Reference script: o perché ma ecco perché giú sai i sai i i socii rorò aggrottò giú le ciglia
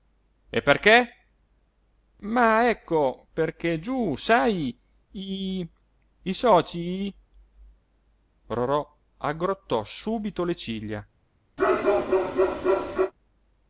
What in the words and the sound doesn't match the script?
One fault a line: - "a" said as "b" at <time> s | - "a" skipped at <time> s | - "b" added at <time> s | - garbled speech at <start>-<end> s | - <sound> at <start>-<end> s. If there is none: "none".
- "o" said as "e" at 0.5 s
- "sai" skipped at 5.7 s
- "i" skipped at 6.3 s
- "giú" said as "subito" at 9.8 s
- bark at 11.6-13.1 s